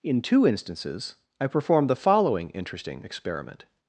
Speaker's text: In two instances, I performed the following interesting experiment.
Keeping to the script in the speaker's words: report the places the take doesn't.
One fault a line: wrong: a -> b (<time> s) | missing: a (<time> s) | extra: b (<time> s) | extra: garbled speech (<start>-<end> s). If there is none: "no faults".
no faults